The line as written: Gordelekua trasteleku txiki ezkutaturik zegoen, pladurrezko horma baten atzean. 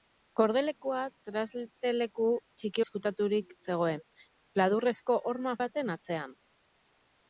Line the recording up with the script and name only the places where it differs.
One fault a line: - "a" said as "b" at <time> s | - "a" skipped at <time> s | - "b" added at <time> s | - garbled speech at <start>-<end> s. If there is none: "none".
none